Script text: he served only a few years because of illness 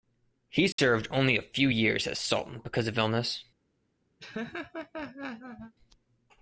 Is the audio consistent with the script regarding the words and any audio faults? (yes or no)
no